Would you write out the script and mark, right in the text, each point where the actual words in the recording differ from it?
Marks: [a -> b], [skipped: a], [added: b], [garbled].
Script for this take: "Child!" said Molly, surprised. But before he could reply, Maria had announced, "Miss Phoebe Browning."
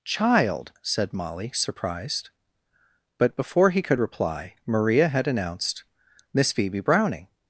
"Child!" said Molly, surprised. But before he could reply, Maria had announced, "Miss Phoebe Browning."